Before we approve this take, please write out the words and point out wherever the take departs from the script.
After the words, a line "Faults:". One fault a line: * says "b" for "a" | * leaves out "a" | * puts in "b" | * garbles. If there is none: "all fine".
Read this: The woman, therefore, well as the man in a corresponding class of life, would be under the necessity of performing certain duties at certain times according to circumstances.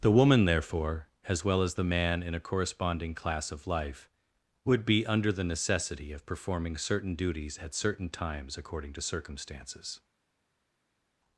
The woman, therefore, as well as the man in a corresponding class of life, would be under the necessity of performing certain duties at certain times according to circumstances.
Faults:
* puts in "as"